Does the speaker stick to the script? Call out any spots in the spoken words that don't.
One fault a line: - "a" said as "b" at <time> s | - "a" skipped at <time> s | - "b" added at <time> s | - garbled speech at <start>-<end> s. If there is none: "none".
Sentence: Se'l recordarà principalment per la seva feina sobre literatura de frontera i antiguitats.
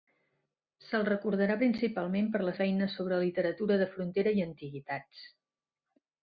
- "seva" skipped at 2.6 s